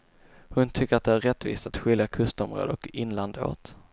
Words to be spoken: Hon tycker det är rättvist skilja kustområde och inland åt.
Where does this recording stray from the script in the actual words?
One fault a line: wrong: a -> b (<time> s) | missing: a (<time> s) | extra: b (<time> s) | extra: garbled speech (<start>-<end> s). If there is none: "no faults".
extra: att (0.9 s)
extra: att (1.7 s)